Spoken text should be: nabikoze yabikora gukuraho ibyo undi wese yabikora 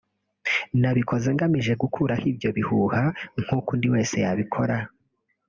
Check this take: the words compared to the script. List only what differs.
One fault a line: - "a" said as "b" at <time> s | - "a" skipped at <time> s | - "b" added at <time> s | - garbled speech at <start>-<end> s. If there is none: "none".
- "yabikora" said as "ngamije" at 1.4 s
- "bihuha nk'uko" added at 2.6 s